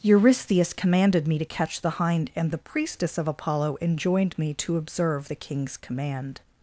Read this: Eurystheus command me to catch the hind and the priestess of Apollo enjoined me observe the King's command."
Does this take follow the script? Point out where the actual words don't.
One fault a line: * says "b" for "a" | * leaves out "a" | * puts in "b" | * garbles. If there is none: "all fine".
* says "commanded" for "command"
* puts in "to"